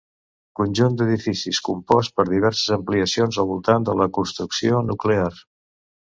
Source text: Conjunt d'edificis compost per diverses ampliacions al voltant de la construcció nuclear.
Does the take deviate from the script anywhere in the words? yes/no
no